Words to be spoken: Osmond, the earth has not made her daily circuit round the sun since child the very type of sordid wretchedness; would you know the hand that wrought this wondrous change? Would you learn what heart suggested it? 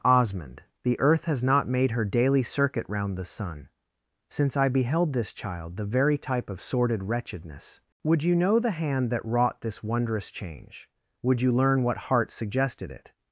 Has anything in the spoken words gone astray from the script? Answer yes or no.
yes